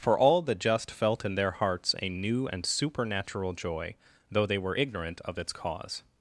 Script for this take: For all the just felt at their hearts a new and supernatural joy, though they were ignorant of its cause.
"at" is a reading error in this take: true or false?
true